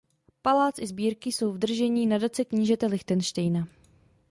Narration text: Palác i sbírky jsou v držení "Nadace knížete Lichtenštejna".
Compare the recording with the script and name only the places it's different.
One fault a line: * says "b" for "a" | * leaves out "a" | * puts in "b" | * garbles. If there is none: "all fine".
all fine